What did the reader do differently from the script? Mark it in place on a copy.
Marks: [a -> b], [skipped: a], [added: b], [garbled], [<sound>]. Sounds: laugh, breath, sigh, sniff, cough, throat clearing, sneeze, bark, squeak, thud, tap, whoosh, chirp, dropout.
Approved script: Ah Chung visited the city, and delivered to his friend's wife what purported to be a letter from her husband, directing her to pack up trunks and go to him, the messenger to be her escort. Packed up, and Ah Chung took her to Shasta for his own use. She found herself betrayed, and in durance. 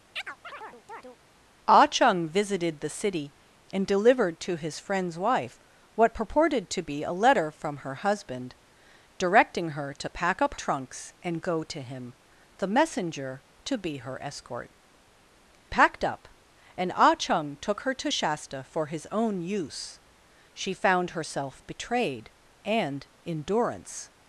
[chirp] Ah Chung visited the city, and delivered to his friend's wife what purported to be a letter from her husband, directing her to pack up trunks and go to him, the messenger to be her escort. Packed up, and Ah Chung took her to Shasta for his own use. She found herself betrayed, and in durance.